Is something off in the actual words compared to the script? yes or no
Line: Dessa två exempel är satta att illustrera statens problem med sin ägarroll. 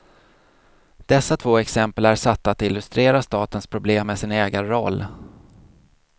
no